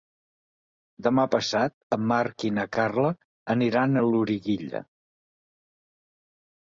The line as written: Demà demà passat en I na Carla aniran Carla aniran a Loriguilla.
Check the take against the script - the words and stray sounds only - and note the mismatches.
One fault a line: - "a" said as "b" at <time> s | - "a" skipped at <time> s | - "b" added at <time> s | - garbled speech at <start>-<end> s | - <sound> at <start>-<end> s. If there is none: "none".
- "demà" skipped at 1.2 s
- "Marc" added at 2.1 s
- "Carla aniran" skipped at 3.9 s